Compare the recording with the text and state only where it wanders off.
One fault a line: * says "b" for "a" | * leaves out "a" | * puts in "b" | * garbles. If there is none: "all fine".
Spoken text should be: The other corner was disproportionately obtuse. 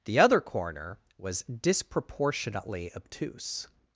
all fine